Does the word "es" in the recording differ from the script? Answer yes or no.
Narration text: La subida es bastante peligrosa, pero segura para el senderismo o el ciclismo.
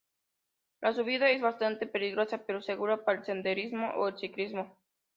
no